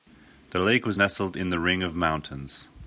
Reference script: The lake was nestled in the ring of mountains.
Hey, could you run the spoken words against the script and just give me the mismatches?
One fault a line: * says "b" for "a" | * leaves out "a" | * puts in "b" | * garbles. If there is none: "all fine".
all fine